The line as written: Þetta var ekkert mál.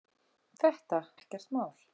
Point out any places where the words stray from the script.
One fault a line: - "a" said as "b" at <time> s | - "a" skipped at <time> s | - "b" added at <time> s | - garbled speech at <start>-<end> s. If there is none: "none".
- "var" skipped at 1.0 s